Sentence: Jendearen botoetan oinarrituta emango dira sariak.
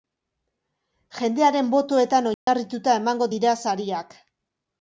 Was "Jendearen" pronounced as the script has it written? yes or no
yes